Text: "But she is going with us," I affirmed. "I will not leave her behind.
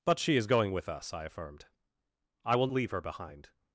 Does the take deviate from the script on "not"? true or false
true